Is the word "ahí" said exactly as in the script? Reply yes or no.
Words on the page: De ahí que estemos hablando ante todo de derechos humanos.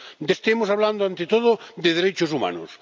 no